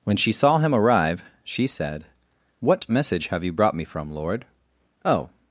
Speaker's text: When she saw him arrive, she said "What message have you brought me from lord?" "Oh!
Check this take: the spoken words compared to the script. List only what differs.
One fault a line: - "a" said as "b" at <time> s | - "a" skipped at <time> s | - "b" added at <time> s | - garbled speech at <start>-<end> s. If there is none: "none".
none